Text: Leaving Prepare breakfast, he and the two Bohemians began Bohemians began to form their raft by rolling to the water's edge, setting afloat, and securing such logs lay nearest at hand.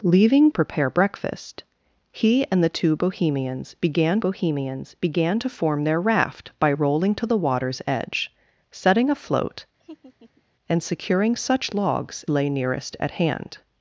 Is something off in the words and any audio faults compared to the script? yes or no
yes